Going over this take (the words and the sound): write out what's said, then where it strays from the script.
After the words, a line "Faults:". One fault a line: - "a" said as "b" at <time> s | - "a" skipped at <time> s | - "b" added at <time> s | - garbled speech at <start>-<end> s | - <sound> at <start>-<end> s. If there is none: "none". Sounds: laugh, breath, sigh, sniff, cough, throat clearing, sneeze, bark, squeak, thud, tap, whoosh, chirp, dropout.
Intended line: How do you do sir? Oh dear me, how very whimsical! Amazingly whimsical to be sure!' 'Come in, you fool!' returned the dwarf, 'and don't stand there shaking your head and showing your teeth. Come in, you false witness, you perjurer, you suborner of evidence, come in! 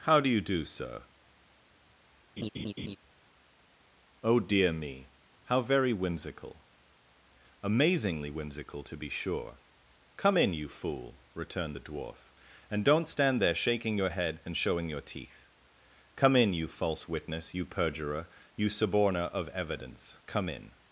How do you do sir? Oh dear me, how very whimsical! Amazingly whimsical to be sure!' 'Come in, you fool!' returned the dwarf, 'and don't stand there shaking your head and showing your teeth. Come in, you false witness, you perjurer, you suborner of evidence, come in!
Faults:
- laugh at 2.4-3.0 s